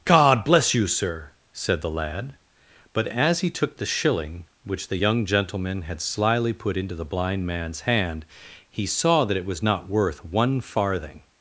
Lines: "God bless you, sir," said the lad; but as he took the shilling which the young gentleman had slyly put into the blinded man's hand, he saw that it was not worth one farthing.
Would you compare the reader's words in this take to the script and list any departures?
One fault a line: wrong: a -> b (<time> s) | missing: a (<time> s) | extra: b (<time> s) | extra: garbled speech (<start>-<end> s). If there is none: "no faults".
wrong: blinded -> blind (7.0 s)